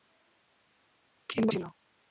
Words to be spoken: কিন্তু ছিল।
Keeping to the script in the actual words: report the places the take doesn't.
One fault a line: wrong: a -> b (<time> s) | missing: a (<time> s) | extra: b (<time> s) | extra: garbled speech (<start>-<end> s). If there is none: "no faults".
no faults